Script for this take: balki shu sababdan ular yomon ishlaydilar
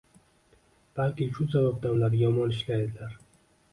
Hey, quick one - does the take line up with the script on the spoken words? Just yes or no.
yes